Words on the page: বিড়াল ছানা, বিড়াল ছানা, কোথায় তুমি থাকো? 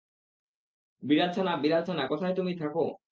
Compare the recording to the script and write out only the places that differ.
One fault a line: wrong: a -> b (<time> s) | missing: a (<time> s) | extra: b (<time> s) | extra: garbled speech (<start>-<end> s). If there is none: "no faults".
no faults